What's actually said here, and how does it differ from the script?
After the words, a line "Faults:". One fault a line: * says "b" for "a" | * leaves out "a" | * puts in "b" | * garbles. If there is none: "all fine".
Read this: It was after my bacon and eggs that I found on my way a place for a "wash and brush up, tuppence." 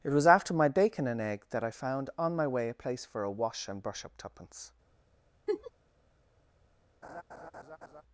It was after my bacon and egg that I found on my way a place for a "wash and brush up, tuppence."
Faults:
* says "egg" for "eggs"